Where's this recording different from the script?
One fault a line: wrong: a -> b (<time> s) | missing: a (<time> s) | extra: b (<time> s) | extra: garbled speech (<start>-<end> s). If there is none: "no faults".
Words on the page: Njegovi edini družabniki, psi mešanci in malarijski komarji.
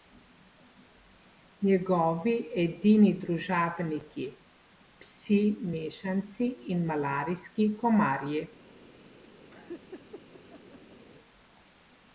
no faults